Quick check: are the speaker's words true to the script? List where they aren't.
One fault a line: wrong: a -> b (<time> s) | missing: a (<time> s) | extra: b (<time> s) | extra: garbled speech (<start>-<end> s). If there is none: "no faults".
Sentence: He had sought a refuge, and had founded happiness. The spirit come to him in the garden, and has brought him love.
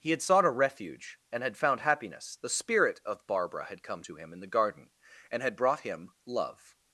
wrong: founded -> found (1.6 s)
extra: of Barbara had (3.0 s)
wrong: has -> had (5.4 s)